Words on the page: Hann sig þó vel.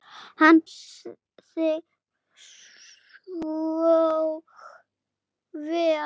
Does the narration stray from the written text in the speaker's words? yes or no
no